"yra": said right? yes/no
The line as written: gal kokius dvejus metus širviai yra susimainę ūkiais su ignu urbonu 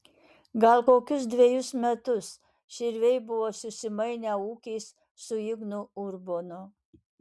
no